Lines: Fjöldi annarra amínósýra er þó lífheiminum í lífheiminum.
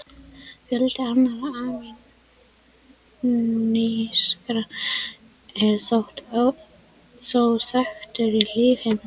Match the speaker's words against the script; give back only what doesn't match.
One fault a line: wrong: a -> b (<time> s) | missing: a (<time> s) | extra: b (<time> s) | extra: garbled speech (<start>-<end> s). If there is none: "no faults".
wrong: lífheiminum -> þekktur (7.7 s)